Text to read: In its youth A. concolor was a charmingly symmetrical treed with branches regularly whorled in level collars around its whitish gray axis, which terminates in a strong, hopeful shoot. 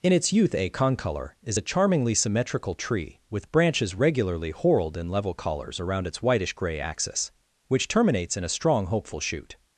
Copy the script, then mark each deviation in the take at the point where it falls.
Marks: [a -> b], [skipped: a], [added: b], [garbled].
In its youth A. concolor [was -> is] a charmingly symmetrical [treed -> tree] with branches regularly whorled in level collars around its whitish gray axis, which terminates in a strong, hopeful shoot.